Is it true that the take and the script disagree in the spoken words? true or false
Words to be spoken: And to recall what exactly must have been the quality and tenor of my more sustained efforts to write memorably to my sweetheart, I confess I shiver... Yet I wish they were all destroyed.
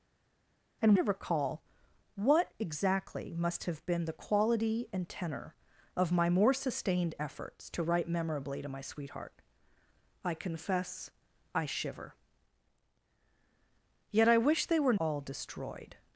false